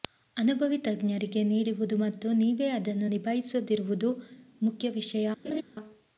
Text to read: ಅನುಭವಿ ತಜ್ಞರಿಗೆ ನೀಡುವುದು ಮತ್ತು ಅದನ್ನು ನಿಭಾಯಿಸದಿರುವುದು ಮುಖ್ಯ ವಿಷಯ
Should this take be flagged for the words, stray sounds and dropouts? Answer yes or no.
yes